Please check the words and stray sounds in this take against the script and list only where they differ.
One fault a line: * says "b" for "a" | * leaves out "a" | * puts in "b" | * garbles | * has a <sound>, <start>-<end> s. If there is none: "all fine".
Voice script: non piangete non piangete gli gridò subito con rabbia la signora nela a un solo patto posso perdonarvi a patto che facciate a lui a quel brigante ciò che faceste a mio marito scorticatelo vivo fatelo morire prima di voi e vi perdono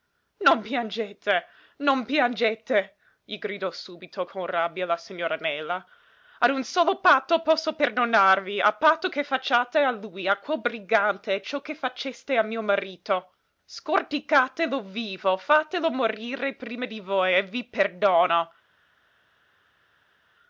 all fine